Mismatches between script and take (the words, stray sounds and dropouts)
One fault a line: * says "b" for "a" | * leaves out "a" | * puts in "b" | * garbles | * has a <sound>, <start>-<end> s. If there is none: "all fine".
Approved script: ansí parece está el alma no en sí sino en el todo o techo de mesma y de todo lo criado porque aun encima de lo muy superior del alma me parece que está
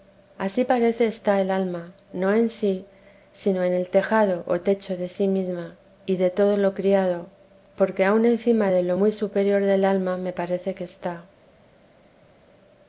* says "tejado" for "todo"
* puts in "sí"